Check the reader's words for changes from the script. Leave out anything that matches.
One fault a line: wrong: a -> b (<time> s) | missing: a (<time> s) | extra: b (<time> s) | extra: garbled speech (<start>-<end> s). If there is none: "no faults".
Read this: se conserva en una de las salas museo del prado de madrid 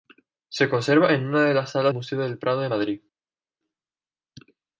no faults